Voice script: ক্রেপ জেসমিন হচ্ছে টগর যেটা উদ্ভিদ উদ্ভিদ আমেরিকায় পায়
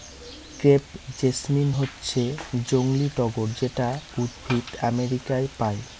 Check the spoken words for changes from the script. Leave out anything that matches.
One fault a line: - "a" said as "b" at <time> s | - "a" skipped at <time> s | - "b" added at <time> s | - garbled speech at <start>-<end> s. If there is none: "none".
- "জংলী" added at 2.6 s
- "উদ্ভিদ" skipped at 4.7 s